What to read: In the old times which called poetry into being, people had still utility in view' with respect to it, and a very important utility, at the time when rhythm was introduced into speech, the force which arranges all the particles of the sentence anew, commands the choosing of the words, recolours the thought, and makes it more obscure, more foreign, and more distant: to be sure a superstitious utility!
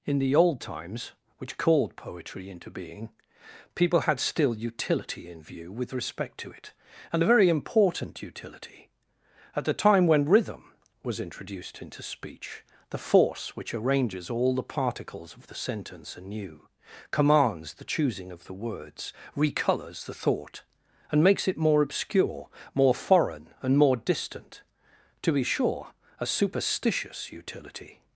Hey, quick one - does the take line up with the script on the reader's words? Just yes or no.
yes